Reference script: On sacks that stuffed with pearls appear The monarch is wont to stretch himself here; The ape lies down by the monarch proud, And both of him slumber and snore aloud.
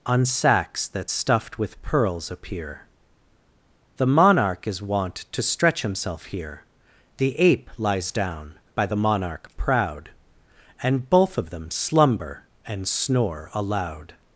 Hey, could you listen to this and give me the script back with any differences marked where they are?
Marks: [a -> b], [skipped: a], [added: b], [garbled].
On sacks that stuffed with pearls appear The monarch is wont to stretch himself here; The ape lies down by the monarch proud, And both of [him -> them] slumber and snore aloud.